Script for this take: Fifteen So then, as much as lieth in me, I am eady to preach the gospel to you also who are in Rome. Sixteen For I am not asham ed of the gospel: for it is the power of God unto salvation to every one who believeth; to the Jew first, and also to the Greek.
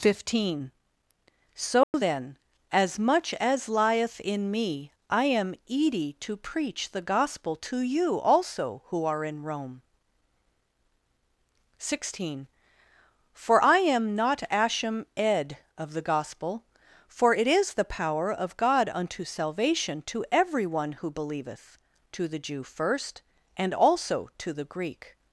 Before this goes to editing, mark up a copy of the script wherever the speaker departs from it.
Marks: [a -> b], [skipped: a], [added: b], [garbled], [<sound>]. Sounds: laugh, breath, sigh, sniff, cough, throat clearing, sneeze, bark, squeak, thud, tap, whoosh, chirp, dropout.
Fifteen So [dropout] then, as much as lieth in me, I am eady to preach the gospel to you also who are in Rome. Sixteen For I am not asham ed of the gospel: for it is the power of God unto salvation to every one who believeth; to the Jew first, and also to the Greek.